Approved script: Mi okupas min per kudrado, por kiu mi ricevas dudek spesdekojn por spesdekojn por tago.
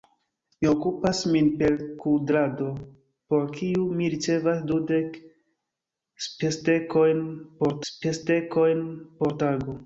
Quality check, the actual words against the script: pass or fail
pass